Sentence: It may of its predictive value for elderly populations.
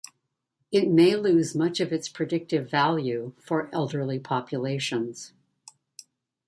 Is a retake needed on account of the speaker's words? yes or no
yes